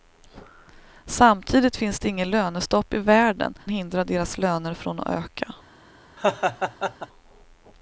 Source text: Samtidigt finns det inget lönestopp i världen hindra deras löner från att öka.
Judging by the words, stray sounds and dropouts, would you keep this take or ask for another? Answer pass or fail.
fail